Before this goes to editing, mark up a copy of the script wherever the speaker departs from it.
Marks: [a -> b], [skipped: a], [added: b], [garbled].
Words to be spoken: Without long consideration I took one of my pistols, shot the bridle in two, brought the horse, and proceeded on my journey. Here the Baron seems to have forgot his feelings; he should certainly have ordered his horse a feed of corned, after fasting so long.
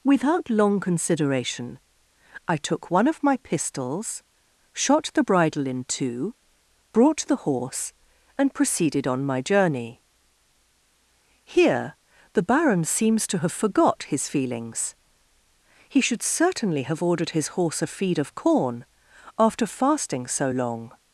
Without long consideration I took one of my pistols, shot the bridle in two, brought the horse, and proceeded on my journey. Here the Baron seems to have forgot his feelings; he should certainly have ordered his horse a feed of [corned, -> corn] after fasting so long.